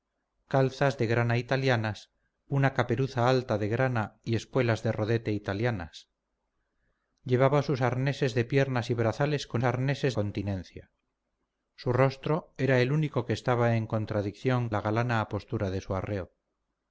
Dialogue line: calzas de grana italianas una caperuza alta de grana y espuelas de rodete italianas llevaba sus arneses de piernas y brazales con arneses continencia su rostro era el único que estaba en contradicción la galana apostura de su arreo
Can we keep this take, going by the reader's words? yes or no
yes